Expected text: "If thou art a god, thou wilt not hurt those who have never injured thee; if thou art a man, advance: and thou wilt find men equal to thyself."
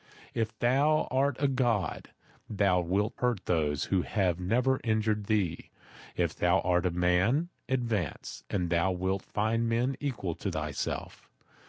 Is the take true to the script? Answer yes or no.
no